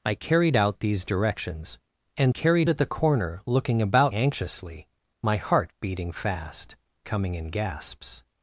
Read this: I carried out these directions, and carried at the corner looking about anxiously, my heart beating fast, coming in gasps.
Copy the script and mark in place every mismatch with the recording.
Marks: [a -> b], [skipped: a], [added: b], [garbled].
I carried out these directions, and carried at the corner looking about anxiously, my heart beating fast, coming in gasps.